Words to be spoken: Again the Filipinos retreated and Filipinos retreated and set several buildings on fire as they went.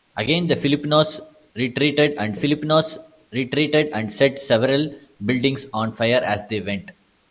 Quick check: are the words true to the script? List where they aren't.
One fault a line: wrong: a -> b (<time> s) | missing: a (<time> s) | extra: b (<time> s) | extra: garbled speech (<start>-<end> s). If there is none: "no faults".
no faults